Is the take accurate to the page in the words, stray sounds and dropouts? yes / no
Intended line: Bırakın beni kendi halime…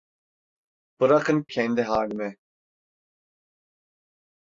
no